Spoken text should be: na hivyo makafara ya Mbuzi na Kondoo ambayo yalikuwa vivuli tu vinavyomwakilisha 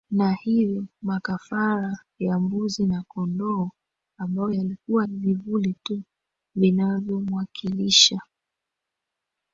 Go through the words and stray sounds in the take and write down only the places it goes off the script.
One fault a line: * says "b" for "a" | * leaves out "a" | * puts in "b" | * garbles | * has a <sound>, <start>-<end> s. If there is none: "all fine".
all fine